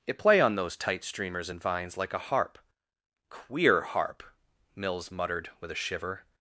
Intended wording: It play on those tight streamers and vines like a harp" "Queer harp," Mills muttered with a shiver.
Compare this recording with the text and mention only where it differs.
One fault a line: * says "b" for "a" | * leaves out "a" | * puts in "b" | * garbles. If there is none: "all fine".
all fine